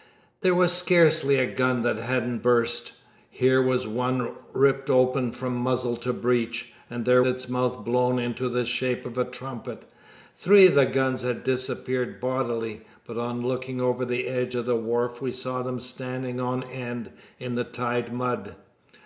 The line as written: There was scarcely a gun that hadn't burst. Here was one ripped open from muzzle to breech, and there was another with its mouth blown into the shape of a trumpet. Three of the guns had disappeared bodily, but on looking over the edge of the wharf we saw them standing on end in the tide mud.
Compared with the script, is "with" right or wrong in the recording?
wrong